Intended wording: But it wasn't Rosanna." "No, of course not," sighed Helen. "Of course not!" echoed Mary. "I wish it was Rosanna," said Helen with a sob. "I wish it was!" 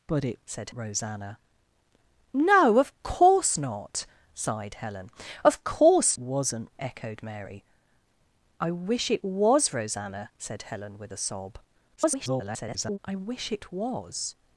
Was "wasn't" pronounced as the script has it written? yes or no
no